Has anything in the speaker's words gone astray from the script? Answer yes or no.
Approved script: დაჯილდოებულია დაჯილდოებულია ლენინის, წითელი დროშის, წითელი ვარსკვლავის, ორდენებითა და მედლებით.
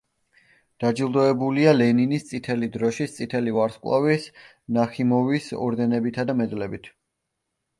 yes